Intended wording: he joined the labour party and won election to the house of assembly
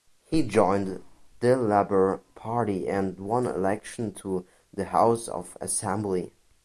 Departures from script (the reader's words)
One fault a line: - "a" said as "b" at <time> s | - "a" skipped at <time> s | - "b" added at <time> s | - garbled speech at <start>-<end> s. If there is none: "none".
none